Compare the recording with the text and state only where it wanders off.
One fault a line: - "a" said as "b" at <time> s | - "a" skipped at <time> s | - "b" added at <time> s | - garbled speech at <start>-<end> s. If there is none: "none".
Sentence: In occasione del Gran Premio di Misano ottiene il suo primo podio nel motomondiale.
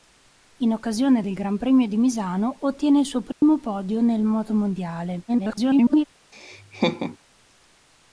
- garbled speech at 5.3-6.1 s